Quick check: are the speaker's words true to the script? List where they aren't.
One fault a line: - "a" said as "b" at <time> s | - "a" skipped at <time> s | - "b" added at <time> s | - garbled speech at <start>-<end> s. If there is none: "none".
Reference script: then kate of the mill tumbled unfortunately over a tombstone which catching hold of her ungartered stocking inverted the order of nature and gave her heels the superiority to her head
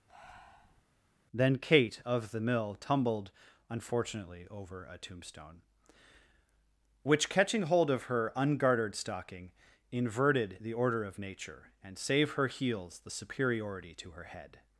- "gave" said as "save" at 12.0 s